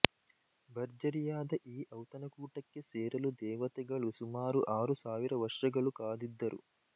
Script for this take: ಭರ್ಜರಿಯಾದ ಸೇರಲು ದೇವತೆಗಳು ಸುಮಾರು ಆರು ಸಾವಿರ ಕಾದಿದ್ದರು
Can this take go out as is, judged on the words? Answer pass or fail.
fail